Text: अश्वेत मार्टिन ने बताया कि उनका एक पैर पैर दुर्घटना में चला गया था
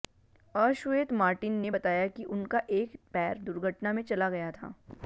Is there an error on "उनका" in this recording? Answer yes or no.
no